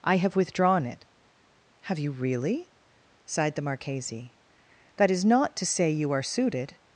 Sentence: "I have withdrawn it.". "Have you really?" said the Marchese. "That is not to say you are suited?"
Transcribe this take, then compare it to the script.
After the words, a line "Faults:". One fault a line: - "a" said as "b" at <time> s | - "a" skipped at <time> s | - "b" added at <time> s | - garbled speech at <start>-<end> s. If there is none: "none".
"I have withdrawn it.". "Have you really?" sighed the Marchese. "That is not to say you are suited?"
Faults:
- "said" said as "sighed" at 3.2 s